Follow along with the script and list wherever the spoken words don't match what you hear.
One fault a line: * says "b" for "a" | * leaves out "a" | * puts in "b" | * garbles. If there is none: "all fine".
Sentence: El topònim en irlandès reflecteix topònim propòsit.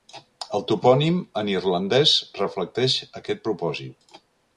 * says "aquest" for "topònim"